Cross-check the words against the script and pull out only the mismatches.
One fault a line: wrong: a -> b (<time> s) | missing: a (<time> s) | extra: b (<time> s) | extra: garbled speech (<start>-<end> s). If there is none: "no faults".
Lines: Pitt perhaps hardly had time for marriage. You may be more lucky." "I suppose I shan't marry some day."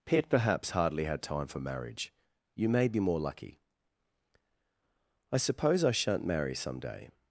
no faults